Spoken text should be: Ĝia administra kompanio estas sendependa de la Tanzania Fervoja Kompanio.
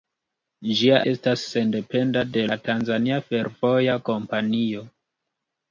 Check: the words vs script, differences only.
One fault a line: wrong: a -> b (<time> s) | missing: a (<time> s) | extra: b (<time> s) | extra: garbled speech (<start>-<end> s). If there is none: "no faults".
missing: administra kompanio (1.0 s)